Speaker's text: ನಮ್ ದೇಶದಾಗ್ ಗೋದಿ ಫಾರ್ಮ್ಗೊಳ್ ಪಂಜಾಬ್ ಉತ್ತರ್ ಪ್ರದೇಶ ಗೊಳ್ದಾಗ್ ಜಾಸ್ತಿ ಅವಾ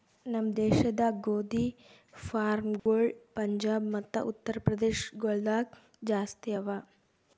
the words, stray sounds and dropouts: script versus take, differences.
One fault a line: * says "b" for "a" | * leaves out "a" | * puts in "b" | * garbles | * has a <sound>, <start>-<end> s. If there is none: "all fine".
* has a dropout, 2.8-2.9 s
* puts in "ಮತ್ತ"